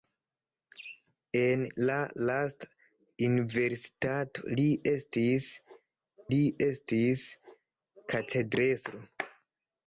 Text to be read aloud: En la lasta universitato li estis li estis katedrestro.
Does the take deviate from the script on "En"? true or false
false